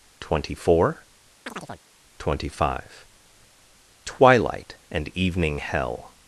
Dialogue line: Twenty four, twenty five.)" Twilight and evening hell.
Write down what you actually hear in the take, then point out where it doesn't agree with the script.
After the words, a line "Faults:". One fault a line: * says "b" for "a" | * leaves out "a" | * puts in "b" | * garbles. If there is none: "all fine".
Twenty four, twenty five.)" Twilight and evening hell.
Faults:
all fine